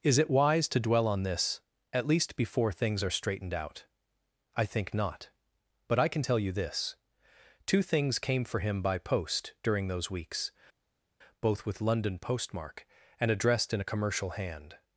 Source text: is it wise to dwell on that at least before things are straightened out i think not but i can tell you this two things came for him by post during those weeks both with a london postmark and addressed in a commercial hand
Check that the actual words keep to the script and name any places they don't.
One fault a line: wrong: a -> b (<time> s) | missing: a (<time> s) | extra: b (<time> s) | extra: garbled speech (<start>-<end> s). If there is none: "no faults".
wrong: that -> this (1.2 s)
missing: a (11.8 s)